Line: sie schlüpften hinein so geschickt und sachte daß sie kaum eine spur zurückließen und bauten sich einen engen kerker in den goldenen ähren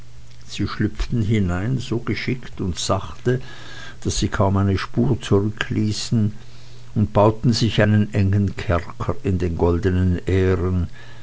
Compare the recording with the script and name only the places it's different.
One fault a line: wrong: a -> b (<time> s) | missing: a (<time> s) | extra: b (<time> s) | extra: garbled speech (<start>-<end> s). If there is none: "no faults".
no faults